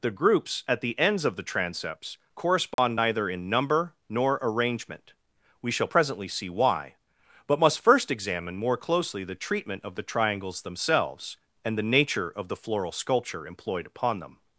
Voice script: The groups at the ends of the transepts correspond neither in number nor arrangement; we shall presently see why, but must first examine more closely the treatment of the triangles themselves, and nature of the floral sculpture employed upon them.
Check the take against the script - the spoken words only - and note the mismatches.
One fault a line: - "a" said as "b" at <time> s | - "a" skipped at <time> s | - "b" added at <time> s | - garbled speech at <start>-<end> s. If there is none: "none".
- "the" added at 11.8 s